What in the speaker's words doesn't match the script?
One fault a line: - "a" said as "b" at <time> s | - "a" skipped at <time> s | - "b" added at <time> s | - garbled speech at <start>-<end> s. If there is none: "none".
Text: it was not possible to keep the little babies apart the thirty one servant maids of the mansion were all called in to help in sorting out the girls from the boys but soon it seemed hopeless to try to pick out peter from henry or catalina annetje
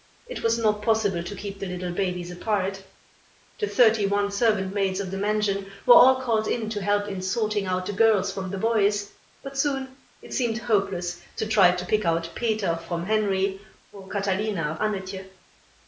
none